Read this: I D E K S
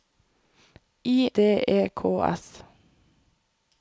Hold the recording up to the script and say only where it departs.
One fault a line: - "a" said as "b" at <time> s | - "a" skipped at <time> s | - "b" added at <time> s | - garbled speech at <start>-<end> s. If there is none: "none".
none